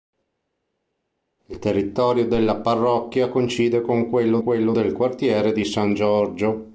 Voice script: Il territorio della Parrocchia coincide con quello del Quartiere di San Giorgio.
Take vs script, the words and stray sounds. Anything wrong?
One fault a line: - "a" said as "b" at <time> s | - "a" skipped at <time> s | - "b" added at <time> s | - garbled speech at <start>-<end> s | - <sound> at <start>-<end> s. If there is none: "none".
- "quello" added at 4.4 s